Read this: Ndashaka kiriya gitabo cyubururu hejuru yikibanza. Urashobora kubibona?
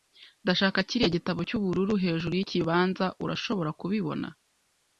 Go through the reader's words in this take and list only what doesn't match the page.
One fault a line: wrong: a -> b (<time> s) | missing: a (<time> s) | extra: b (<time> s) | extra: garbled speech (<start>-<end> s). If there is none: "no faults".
no faults